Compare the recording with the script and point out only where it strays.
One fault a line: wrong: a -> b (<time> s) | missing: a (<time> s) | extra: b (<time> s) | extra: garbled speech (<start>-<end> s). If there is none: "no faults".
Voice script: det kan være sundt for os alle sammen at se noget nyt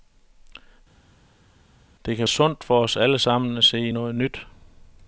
missing: være (2.3 s)